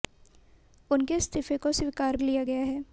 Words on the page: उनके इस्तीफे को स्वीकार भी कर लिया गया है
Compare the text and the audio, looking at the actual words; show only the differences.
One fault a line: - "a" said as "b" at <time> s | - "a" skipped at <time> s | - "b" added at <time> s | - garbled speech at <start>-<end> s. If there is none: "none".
- "भी कर" skipped at 2.2 s